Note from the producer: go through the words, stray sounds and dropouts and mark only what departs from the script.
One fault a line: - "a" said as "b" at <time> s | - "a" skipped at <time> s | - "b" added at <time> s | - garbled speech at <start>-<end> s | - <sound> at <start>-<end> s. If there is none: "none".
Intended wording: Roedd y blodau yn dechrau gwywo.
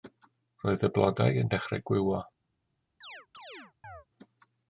- chirp at 3.0-4.1 s